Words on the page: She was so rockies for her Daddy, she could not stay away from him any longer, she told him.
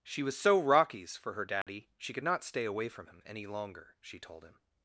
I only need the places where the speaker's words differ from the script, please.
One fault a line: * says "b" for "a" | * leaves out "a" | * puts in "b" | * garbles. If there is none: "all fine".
all fine